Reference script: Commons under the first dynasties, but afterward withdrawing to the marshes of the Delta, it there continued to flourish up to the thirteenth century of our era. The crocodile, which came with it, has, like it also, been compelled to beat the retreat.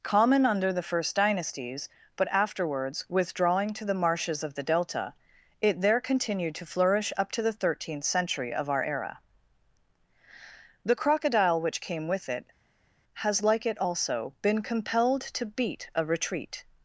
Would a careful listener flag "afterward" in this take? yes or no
yes